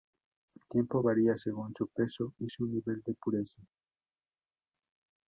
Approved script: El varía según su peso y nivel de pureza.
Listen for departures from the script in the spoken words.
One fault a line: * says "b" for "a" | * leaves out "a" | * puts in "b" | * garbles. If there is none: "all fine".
* puts in "tiempo"
* puts in "su"